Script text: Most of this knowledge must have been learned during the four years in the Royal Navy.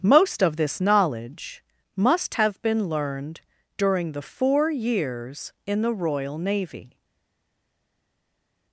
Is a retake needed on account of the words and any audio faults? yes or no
no